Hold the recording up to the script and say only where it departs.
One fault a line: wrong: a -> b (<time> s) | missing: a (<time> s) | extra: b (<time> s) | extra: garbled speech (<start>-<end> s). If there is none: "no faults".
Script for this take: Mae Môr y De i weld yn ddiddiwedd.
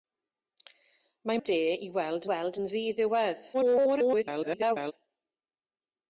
missing: Môr (1.4 s)
extra: weld (2.3 s)
extra: garbled speech (3.5-4.9 s)